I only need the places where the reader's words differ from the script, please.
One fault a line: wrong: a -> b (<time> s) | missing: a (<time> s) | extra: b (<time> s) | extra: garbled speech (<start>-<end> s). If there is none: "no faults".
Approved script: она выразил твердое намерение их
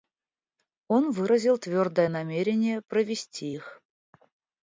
wrong: она -> он (0.9 s)
extra: провести (2.8 s)